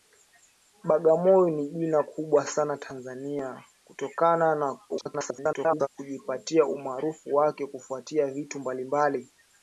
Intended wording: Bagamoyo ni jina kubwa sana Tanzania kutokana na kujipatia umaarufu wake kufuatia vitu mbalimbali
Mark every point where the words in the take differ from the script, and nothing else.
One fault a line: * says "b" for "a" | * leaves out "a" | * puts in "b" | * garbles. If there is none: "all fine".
* garbles